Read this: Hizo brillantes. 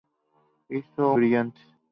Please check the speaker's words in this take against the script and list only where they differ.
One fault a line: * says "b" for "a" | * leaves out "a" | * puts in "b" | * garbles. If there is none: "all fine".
all fine